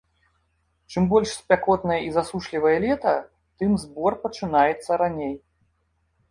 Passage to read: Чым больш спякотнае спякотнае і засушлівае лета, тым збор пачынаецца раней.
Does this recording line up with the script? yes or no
no